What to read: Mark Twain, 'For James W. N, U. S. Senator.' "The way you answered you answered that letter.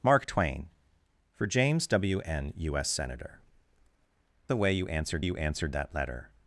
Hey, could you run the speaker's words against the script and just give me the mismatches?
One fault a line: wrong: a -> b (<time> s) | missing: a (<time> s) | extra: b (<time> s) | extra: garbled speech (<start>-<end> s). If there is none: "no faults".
no faults